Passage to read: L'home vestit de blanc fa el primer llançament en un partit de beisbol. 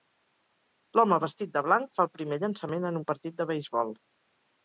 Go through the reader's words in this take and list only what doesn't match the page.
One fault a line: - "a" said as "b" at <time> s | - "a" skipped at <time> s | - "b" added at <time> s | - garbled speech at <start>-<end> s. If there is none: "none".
none